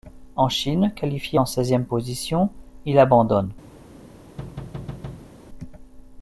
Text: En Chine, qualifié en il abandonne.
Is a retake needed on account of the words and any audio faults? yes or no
yes